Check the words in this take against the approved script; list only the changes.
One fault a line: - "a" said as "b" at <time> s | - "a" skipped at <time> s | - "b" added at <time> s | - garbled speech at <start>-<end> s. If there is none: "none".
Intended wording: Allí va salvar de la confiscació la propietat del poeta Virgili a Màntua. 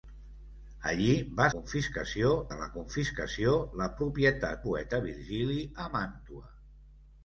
- "salvar" said as "confiscació" at 1.5 s
- "del" skipped at 4.6 s